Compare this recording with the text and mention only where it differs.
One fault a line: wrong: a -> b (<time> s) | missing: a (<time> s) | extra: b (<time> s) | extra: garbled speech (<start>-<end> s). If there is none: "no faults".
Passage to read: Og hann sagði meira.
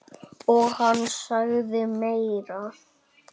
no faults